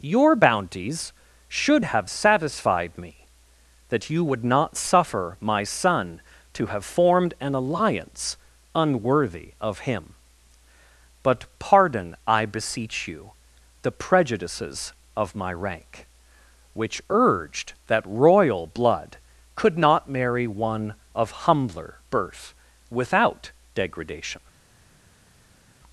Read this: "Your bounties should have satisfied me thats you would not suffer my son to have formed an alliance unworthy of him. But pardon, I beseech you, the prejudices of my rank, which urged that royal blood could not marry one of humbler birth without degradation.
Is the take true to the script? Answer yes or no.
no